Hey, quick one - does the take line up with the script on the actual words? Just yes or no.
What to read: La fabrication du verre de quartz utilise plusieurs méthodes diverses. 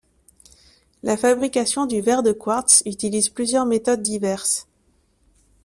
yes